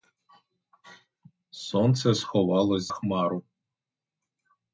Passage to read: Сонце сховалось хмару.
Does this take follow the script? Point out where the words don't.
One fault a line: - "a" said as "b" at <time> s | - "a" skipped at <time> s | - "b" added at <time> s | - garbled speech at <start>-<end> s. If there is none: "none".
none